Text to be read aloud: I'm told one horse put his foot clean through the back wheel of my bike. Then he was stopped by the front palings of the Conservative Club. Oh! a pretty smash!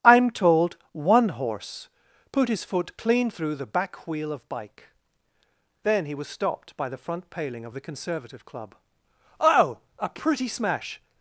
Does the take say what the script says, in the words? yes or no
no